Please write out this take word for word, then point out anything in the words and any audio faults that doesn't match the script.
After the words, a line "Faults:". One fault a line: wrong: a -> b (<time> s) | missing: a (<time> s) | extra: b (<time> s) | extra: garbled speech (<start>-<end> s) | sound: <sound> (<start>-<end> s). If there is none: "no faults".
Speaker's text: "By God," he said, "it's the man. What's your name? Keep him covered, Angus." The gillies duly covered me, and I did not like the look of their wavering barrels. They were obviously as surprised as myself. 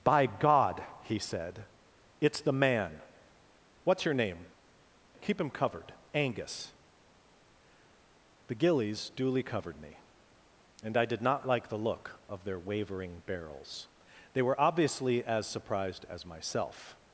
"By God," he said, "it's the man. What's your name? Keep him covered, Angus." The gillies duly covered me, and I did not like the look of their wavering barrels. They were obviously as surprised as myself.
Faults:
no faults